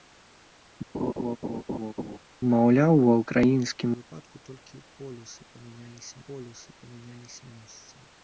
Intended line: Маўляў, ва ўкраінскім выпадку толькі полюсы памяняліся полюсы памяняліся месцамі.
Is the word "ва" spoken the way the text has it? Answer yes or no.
yes